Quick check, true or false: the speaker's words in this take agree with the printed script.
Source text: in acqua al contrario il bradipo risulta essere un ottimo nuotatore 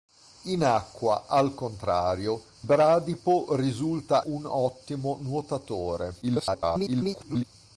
false